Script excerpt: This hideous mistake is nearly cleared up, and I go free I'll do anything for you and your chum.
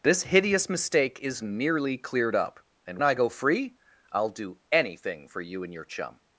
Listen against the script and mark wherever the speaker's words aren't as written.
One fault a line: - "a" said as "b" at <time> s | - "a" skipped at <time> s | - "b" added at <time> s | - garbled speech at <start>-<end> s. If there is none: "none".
none